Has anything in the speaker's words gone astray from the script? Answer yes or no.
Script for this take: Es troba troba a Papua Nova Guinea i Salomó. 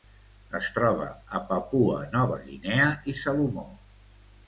yes